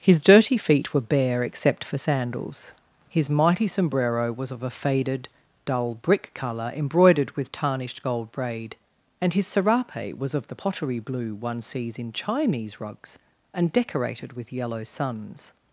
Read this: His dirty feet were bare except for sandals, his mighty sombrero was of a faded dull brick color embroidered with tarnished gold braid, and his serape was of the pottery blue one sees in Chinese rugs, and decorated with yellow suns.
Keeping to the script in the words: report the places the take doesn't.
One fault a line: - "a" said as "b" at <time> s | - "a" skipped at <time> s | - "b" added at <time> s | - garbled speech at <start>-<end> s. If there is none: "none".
none